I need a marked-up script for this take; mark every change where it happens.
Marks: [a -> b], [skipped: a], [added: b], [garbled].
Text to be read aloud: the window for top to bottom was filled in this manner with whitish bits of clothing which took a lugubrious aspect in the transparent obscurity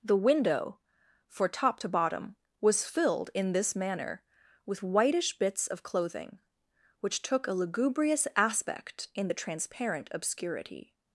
the window for top to bottom was filled in this manner with whitish bits of clothing which took a lugubrious aspect in the transparent obscurity